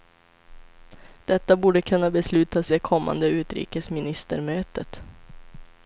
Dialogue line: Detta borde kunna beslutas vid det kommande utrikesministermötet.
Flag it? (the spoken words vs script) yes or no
yes